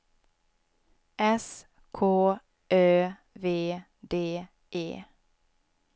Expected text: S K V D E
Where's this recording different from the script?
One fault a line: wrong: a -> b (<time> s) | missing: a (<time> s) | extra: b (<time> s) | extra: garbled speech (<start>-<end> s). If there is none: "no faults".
extra: Ö (2.7 s)